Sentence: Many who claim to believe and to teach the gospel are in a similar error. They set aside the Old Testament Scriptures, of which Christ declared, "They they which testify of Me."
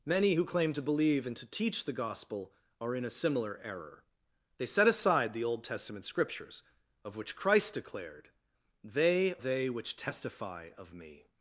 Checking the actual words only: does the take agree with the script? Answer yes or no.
yes